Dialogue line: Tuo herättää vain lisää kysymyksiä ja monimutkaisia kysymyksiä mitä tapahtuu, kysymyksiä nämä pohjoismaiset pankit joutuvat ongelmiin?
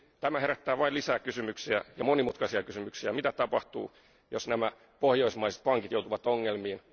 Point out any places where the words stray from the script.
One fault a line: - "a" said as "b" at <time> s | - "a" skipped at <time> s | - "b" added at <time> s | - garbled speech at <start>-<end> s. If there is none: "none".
- "Tuo" said as "Tämä" at 0.2 s
- "kysymyksiä" said as "jos" at 4.3 s